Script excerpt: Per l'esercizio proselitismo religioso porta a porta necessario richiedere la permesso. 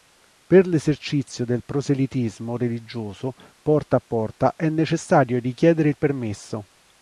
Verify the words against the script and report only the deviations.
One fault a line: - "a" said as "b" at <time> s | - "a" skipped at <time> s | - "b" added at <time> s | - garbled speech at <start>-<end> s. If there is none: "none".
- "del" added at 1.4 s
- "è" added at 4.5 s
- "la" said as "il" at 5.9 s